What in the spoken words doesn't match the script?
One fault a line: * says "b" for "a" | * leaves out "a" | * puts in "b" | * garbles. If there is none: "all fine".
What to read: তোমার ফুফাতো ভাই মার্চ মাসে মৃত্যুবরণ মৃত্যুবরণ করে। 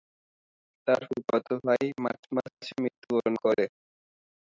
* says "তার" for "তোমার"
* leaves out "মৃত্যুবরণ"